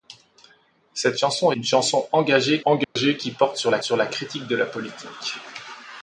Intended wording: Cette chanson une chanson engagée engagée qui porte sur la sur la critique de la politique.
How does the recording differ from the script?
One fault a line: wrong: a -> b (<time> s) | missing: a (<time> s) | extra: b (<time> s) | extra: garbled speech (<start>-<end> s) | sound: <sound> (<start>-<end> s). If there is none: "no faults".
sound: dropout (2.8-3.0 s)